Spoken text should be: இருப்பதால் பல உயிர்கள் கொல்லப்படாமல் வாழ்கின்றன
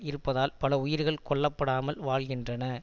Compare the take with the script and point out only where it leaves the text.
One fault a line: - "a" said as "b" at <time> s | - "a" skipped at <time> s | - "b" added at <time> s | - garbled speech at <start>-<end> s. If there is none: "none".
none